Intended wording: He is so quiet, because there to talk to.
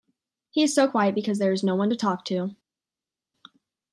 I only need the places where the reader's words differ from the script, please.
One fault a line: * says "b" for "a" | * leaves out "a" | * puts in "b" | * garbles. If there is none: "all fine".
* puts in "is no one"